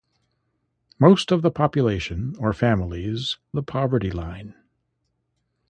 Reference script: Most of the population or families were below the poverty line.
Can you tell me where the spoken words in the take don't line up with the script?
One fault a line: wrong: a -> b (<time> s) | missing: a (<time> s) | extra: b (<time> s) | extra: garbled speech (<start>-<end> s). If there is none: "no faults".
missing: were below (3.4 s)